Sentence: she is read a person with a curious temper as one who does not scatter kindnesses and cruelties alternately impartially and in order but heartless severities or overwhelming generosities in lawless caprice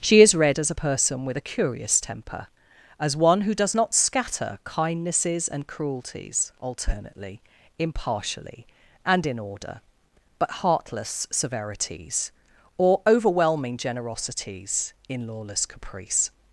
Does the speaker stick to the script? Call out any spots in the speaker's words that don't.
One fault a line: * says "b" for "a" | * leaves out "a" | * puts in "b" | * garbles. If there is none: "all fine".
* puts in "as"